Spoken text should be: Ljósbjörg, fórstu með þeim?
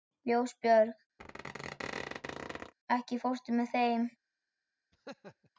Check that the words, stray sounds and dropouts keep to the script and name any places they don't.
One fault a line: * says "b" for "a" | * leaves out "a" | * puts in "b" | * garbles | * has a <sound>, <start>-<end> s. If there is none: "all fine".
* has a squeak, 1.2-2.7 s
* puts in "ekki"
* has a laugh, 4.9-5.5 s